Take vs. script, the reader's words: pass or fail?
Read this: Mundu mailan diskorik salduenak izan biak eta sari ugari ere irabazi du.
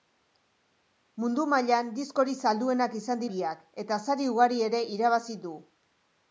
pass